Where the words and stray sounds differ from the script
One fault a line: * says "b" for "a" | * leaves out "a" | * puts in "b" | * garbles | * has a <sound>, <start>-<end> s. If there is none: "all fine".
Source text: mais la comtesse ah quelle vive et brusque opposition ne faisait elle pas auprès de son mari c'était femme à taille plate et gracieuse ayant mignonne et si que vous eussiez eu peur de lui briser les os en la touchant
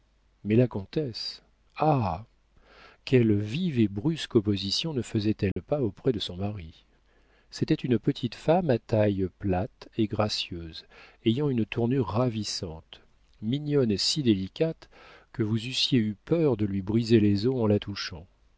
* has a dropout, 5.5-5.6 s
* puts in "une petite"
* puts in "une tournure ravissante"
* puts in "délicate"